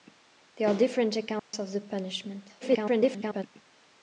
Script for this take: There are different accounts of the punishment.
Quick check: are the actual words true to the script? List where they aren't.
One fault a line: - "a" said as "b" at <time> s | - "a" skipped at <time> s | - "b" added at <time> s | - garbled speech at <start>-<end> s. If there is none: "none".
- garbled speech at 2.6-3.4 s